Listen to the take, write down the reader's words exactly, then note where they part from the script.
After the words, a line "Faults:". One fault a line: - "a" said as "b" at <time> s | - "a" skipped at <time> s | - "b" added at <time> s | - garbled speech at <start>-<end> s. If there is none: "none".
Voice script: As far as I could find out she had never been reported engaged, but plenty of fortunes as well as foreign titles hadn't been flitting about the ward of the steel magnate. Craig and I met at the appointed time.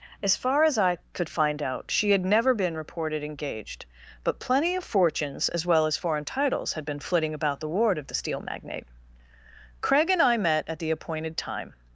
As far as I could find out she had never been reported engaged, but plenty of fortunes as well as foreign titles had been flitting about the ward of the steel magnate. Craig and I met at the appointed time.
Faults:
- "hadn't" said as "had" at 6.7 s